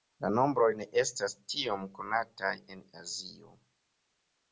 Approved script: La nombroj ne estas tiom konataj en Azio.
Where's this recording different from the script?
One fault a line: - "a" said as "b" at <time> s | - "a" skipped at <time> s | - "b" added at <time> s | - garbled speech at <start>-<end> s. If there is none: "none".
none